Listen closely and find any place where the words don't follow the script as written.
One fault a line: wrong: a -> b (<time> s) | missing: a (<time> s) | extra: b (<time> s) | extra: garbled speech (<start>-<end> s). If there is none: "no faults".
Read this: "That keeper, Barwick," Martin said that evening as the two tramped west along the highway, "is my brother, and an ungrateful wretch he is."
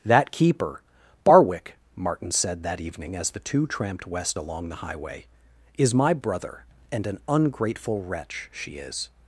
wrong: he -> she (8.5 s)